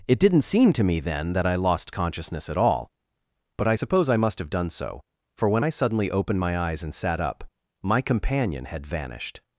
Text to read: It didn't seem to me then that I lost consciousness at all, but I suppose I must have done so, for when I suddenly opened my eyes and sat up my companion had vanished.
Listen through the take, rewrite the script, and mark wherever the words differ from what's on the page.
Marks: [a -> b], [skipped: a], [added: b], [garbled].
It didn't seem to me then that I lost consciousness at all, but I suppose I must have done so, for when I suddenly opened my eyes and sat up my companion had vanished.